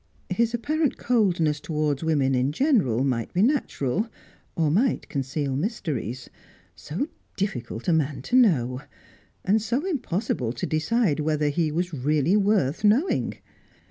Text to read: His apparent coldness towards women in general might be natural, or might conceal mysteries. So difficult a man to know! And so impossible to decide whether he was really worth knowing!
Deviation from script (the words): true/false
false